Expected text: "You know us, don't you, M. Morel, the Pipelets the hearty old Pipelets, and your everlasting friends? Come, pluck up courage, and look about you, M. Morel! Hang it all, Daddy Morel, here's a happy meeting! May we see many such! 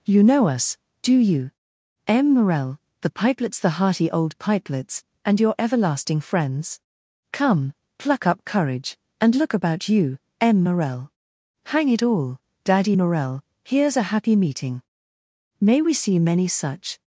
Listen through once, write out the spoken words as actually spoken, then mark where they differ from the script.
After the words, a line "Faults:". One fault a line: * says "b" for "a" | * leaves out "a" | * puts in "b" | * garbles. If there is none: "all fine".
"You know us, do you, M. Morel, the Pipelets the hearty old Pipelets, and your everlasting friends? Come, pluck up courage, and look about you, M. Morel! Hang it all, Daddy Morel, here's a happy meeting! May we see many such!
Faults:
* says "do" for "don't"